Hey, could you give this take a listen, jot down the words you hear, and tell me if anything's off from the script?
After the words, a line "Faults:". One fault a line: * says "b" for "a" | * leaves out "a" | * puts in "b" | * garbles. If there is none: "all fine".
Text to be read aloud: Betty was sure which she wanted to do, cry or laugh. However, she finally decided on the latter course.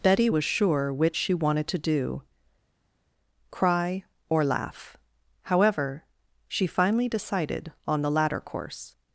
Betty was sure which she wanted to do, cry or laugh. However, she finally decided on the latter course.
Faults:
all fine